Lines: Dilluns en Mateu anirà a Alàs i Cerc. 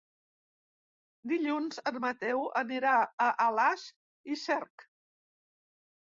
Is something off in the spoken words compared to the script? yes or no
no